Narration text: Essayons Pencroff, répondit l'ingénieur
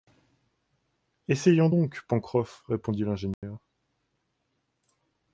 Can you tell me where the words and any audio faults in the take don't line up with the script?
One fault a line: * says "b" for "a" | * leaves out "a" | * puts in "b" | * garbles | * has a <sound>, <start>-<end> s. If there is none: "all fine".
* puts in "donc"
* has a dropout, 3.3-3.4 s